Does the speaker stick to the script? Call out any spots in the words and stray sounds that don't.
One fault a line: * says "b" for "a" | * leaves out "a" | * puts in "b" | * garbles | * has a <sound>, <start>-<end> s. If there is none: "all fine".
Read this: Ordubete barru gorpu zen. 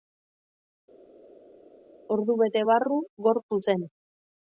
all fine